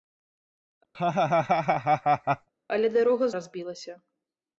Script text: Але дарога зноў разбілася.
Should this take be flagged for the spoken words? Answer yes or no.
yes